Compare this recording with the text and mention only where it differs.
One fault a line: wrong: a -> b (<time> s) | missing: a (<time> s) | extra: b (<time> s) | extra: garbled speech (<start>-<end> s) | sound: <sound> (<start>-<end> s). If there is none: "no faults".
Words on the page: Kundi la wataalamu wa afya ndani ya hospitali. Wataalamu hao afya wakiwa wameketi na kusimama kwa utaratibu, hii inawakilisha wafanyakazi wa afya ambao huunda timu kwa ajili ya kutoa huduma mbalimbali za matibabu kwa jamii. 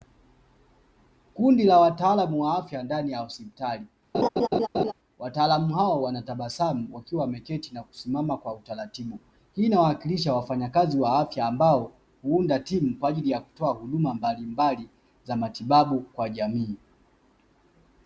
sound: laugh (4.1-4.9 s)
wrong: afya -> wanatabasamu (6.0 s)